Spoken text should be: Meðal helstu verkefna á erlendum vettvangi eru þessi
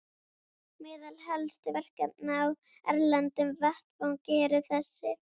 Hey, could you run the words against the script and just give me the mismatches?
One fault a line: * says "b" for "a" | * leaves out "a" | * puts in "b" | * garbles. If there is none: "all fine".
all fine